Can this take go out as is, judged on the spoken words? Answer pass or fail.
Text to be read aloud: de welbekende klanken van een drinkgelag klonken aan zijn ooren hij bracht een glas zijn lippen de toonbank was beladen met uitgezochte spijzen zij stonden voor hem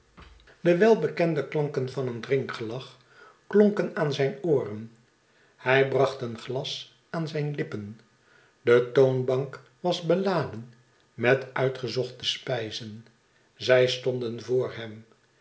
fail